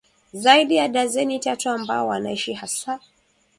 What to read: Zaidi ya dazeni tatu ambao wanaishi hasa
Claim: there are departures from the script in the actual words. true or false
false